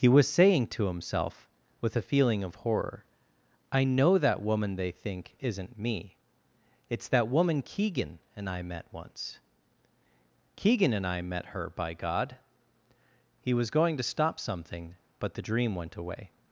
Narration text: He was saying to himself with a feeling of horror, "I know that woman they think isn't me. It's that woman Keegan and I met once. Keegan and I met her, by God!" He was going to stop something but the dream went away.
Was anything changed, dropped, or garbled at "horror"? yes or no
no